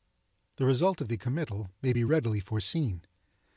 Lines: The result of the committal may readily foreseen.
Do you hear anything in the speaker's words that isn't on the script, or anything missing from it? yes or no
yes